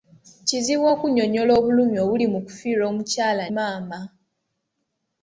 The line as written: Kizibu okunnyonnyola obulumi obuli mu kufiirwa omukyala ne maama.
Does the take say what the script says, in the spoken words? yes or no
no